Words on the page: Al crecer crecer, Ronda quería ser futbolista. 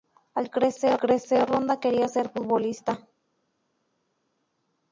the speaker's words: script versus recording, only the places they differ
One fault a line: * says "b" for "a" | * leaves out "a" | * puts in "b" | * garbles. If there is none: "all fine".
all fine